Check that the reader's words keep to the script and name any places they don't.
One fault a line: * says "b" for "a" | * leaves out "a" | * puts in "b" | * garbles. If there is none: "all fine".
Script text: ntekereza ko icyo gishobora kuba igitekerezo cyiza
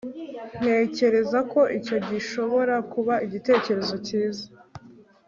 all fine